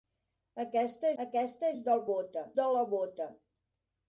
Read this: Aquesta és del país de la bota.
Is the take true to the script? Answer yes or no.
no